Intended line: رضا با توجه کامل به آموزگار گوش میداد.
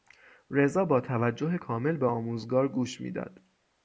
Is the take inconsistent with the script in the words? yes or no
no